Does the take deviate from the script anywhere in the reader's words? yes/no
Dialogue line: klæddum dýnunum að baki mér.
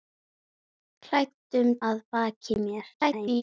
yes